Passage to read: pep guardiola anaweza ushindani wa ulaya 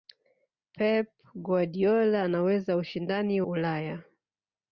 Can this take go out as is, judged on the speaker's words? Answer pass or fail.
fail